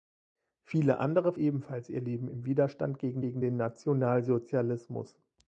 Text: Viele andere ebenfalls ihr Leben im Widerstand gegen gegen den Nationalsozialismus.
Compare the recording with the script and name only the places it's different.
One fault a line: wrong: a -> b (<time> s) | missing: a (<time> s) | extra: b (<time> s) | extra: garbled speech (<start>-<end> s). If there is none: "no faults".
no faults